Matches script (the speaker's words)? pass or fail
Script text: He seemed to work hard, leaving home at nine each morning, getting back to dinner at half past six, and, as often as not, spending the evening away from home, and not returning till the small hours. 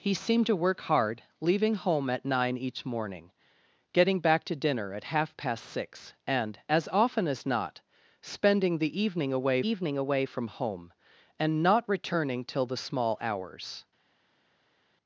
fail